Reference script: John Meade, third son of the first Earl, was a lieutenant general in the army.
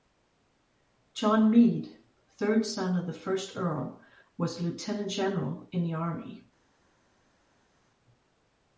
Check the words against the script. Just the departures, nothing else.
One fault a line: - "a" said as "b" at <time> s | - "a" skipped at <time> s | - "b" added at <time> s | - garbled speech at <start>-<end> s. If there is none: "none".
none